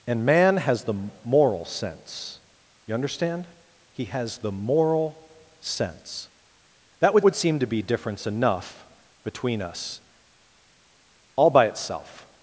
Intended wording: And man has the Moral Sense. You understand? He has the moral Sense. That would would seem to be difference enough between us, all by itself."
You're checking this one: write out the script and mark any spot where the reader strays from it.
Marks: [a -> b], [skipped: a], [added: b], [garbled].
And man has the Moral Sense. You understand? He has the moral Sense. That would would seem to be difference enough between us, all by itself."